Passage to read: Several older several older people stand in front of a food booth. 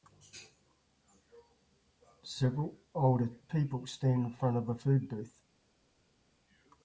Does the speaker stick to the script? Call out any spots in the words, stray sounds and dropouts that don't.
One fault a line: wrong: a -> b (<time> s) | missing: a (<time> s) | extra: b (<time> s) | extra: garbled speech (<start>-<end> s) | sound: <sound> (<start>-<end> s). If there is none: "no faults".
missing: several older (3.4 s)